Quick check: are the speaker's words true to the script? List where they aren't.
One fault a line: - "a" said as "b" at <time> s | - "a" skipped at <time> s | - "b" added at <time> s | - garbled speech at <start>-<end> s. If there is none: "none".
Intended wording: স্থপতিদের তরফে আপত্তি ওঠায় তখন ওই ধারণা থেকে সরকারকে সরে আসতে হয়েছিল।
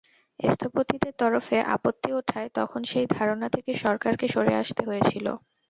- "ওই" said as "সেই" at 2.9 s